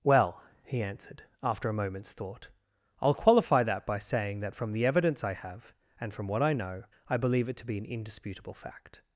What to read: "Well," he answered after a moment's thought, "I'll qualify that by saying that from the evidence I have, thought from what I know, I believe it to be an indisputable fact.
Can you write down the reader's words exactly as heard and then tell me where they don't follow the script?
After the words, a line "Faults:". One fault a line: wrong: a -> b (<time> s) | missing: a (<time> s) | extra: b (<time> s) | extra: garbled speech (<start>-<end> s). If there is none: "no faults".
"Well," he answered after a moment's thought, "I'll qualify that by saying that from the evidence I have, and from what I know, I believe it to be an indisputable fact.
Faults:
wrong: thought -> and (6.0 s)